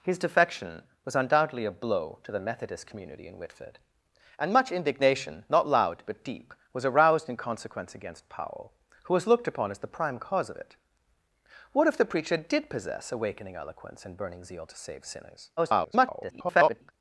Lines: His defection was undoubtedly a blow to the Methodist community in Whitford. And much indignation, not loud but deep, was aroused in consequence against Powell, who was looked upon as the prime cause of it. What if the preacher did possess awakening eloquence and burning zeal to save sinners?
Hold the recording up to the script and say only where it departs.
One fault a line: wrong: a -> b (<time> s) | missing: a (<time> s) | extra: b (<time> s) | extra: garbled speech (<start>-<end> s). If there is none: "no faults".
extra: garbled speech (15.6-16.9 s)